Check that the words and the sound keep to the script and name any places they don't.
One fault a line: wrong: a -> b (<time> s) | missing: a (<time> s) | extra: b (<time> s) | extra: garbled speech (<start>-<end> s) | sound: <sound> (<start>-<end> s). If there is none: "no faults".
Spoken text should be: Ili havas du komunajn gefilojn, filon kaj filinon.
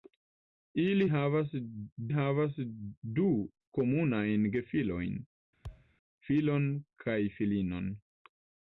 extra: havas (2.2 s)
sound: thud (5.6-5.9 s)